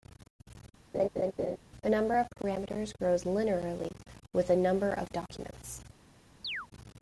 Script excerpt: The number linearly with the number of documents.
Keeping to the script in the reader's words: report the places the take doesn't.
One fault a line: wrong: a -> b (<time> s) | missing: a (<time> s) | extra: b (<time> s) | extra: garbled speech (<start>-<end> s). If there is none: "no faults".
extra: of parameters grows (2.2 s)